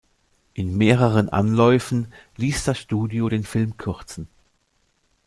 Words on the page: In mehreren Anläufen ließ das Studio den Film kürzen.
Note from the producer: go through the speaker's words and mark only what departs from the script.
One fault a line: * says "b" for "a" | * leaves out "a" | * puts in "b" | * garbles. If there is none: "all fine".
all fine